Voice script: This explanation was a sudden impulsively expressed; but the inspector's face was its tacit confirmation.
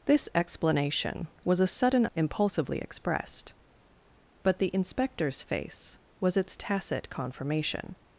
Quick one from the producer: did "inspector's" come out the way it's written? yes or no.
yes